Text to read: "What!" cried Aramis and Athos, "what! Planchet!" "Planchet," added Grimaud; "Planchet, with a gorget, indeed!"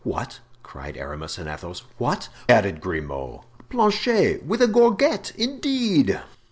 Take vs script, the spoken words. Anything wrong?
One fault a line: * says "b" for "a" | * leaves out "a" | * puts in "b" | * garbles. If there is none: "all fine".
* leaves out "Planchet Planchet"